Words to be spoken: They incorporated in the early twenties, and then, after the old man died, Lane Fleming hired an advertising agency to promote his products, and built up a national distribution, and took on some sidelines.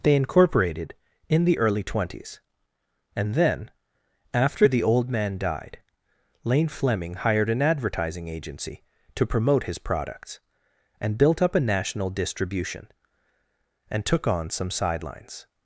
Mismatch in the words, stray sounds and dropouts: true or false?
false